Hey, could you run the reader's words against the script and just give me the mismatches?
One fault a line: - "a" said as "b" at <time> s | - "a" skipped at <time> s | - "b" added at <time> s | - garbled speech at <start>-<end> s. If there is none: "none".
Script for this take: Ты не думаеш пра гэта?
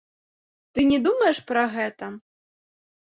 none